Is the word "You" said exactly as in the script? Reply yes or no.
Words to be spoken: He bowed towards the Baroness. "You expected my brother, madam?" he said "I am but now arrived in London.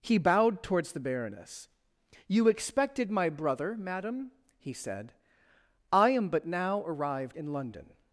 yes